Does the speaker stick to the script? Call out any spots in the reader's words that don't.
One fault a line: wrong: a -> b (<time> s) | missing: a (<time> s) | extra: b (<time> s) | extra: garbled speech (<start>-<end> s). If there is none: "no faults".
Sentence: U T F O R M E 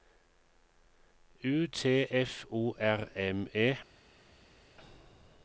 no faults